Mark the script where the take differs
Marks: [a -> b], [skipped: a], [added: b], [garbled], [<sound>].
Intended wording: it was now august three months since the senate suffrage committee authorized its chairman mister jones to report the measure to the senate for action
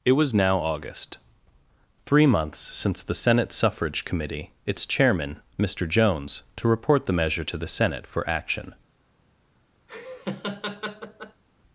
it was now august three months since the senate suffrage committee [skipped: authorized] its chairman mister jones to report the measure to the senate for action [laugh]